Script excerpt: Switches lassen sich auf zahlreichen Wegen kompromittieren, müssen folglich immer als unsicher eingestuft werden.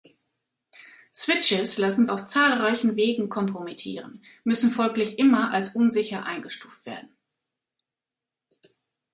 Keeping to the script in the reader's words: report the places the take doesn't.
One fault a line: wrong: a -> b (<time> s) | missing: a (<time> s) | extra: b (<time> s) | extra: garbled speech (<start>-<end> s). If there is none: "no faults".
missing: sich (2.1 s)